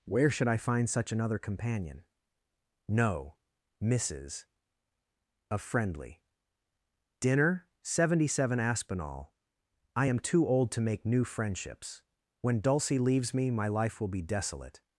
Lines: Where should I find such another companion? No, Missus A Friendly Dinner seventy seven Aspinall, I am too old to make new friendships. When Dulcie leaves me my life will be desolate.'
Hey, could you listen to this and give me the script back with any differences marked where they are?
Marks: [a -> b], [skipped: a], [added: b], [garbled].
Where should I find such another companion? No, Missus A Friendly Dinner seventy seven Aspinall, I am too old to make new friendships. When Dulcie leaves me my life will be desolate.'